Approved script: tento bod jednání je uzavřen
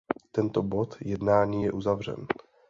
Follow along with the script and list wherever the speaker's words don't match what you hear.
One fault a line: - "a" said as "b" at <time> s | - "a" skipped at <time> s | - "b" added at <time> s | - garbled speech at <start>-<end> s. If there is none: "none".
none